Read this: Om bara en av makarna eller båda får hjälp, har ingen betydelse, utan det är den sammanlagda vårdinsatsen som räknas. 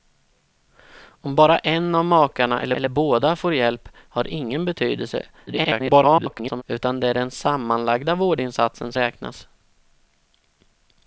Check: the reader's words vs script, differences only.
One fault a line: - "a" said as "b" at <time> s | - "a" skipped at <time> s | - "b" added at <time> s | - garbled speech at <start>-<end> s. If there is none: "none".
- "eller" added at 2.7 s
- garbled speech at 5.5-6.6 s
- "som" skipped at 8.9 s